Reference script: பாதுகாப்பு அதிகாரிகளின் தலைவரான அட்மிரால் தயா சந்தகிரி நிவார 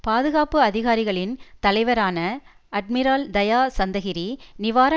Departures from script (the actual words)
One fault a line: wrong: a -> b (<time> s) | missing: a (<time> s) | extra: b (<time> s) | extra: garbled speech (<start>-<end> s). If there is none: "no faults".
no faults